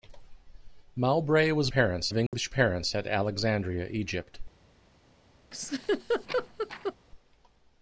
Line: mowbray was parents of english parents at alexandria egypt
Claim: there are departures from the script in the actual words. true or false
false